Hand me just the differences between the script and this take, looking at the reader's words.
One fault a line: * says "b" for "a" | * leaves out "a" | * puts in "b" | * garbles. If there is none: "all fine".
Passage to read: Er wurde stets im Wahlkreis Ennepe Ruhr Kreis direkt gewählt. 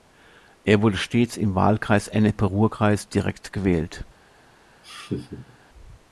all fine